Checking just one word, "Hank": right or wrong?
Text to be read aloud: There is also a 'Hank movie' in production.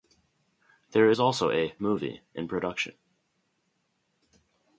wrong